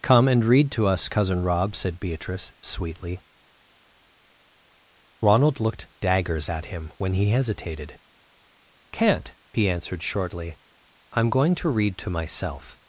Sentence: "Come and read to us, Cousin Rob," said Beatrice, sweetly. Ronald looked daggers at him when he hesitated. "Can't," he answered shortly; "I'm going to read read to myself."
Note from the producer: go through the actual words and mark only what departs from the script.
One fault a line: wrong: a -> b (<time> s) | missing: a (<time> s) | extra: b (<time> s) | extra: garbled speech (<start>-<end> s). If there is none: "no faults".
missing: read (12.0 s)